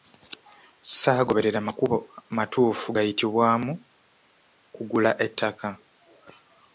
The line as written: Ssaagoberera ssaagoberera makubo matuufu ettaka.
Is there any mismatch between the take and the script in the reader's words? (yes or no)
yes